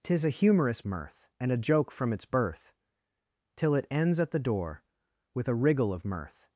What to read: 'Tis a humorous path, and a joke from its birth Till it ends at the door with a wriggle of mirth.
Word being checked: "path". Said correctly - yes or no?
no